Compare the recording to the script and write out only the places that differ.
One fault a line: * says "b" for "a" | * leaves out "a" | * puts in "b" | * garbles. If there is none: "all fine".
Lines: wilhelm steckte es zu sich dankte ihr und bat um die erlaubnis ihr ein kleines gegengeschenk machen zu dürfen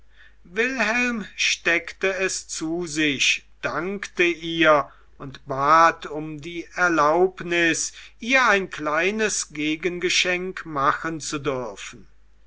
all fine